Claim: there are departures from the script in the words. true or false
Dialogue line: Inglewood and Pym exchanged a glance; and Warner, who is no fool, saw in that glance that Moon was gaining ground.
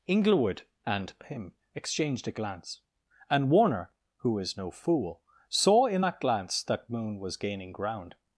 false